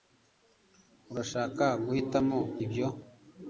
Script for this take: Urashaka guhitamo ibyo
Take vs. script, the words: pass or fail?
pass